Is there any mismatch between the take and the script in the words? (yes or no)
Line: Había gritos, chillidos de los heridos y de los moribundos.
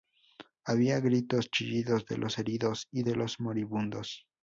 no